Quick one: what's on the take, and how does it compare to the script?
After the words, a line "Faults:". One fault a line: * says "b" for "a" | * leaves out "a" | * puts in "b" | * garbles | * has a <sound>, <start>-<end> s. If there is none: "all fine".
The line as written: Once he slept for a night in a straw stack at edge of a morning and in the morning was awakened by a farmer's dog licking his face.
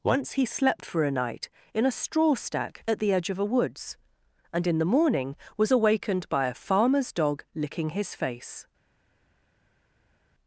Once he slept for a night in a straw stack at the edge of a woods and in the morning was awakened by a farmer's dog licking his face.
Faults:
* puts in "the"
* says "woods" for "morning"